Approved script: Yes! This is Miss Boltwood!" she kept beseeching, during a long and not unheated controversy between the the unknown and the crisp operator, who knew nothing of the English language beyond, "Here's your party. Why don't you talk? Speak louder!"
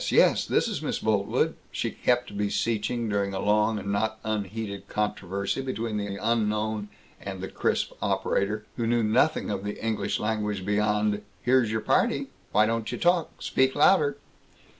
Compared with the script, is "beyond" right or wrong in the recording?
right